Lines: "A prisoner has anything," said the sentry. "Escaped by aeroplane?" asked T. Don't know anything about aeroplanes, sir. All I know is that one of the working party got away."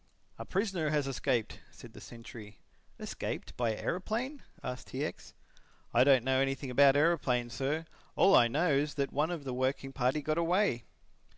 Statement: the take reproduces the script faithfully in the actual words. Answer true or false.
false